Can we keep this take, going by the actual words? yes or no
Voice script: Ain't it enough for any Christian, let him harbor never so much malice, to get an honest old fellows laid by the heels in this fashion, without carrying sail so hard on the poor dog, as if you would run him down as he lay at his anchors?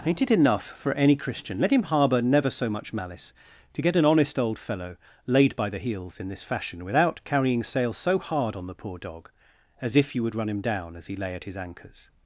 no